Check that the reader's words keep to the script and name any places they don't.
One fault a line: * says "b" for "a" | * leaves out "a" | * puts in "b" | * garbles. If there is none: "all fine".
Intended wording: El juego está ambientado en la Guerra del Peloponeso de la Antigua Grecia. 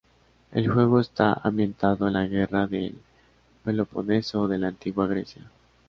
all fine